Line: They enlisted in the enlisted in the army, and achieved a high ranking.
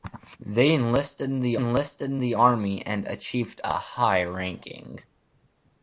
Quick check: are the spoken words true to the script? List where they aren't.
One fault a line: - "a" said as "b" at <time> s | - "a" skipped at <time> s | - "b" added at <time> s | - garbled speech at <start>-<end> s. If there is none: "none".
none